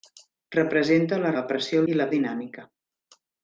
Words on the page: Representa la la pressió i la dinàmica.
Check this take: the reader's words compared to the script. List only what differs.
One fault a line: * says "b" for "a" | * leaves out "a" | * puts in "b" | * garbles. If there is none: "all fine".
all fine